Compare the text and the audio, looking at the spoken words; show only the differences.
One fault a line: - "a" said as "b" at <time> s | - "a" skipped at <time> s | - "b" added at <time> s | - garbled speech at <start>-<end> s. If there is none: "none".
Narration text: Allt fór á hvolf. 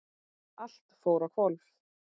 none